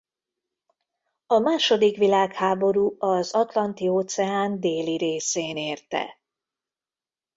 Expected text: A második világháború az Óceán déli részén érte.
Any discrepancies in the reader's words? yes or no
yes